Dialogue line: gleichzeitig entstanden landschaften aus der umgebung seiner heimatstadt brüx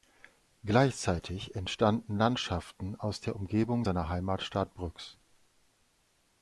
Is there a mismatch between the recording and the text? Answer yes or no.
no